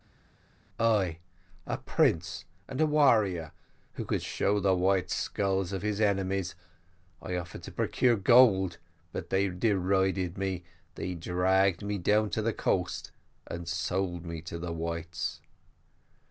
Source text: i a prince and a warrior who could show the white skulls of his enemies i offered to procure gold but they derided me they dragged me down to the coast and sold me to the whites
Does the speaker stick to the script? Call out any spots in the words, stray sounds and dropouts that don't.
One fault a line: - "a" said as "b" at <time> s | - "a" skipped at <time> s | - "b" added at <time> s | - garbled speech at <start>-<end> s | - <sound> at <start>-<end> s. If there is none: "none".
none